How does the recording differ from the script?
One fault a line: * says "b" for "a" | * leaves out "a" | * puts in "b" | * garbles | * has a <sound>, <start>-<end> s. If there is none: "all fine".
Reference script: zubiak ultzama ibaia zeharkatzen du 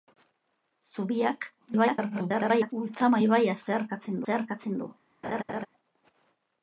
* garbles
* puts in "zeharkatzen"
* has a laugh, 5.2-5.7 s